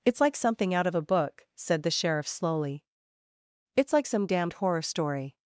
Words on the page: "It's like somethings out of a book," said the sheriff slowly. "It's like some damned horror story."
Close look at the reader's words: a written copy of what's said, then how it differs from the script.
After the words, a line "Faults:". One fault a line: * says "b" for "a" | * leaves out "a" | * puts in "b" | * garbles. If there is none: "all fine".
"It's like something out of a book," said the sheriff slowly. "It's like some damned horror story."
Faults:
* says "something" for "somethings"